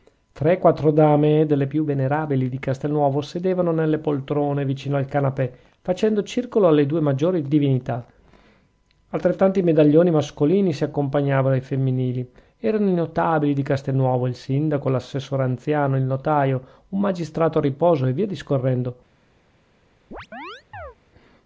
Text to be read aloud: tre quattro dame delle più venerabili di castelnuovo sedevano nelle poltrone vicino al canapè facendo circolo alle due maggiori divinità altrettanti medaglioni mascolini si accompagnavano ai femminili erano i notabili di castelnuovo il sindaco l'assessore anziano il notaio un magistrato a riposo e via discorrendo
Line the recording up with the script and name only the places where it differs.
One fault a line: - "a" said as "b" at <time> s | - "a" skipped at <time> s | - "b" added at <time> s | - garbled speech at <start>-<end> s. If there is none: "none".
none